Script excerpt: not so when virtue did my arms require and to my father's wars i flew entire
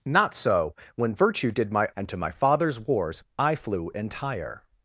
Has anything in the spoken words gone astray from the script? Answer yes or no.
yes